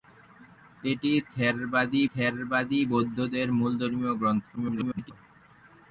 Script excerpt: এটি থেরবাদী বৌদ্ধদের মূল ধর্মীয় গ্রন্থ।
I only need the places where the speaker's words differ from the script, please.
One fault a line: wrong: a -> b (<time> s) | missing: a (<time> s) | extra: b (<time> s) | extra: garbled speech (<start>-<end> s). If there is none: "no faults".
extra: থেরবাদী (2.1 s)
extra: garbled speech (4.6-5.1 s)